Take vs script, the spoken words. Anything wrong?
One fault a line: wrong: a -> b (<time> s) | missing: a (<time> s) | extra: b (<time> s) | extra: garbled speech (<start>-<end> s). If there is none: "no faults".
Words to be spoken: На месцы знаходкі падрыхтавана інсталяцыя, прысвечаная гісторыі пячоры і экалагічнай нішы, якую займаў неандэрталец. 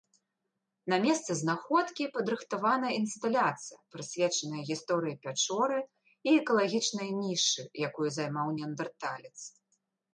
no faults